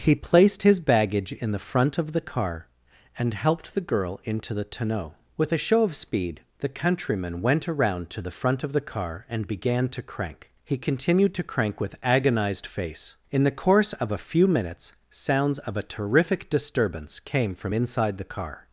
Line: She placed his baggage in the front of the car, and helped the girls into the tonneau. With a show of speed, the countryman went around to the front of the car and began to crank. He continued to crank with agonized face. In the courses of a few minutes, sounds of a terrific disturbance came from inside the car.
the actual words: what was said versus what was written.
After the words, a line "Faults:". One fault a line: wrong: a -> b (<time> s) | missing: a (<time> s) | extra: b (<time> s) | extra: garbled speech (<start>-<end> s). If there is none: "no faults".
He placed his baggage in the front of the car, and helped the girl into the tonneau. With a show of speed, the countryman went around to the front of the car and began to crank. He continued to crank with agonized face. In the course of a few minutes, sounds of a terrific disturbance came from inside the car.
Faults:
wrong: She -> He (0.0 s)
wrong: girls -> girl (3.8 s)
wrong: courses -> course (13.6 s)